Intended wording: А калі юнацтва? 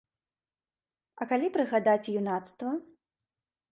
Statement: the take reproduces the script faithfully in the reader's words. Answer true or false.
false